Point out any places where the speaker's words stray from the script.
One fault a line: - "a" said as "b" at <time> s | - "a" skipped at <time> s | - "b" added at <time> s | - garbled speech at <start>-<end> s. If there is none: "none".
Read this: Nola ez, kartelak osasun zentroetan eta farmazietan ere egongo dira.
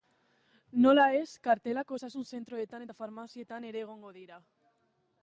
none